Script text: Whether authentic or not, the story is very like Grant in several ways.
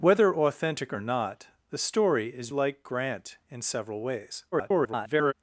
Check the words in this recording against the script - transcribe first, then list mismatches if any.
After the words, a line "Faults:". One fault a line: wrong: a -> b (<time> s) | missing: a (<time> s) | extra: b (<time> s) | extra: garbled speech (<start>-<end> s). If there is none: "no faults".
Whether authentic or not, the story is like Grant in several ways. [garbled]
Faults:
missing: very (2.5 s)
extra: garbled speech (4.5-5.3 s)